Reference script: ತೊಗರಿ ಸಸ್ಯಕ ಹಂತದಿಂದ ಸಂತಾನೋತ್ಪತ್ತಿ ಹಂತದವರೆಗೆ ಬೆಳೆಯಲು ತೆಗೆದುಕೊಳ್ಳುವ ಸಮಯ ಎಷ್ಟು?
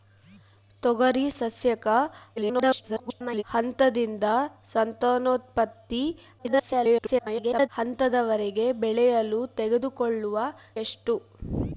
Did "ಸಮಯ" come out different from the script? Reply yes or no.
yes